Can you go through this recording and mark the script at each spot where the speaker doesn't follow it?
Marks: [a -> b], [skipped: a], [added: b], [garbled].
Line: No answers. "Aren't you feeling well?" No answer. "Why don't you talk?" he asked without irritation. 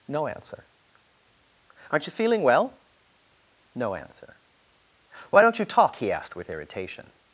No [answers. -> answer] "Aren't you feeling well?" No answer. "Why don't you talk?" he asked [without -> with] irritation.